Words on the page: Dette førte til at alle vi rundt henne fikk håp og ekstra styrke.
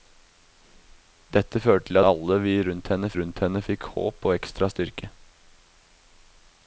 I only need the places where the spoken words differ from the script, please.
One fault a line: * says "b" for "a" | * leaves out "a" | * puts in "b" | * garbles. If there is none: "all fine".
* leaves out "at"
* puts in "rundt henne"